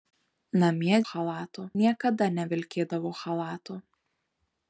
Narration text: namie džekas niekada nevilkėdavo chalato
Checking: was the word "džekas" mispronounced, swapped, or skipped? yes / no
yes